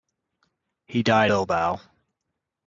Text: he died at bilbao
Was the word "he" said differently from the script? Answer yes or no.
no